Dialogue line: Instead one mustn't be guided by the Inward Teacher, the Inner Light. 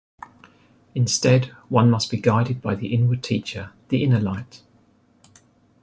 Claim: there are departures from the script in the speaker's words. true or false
true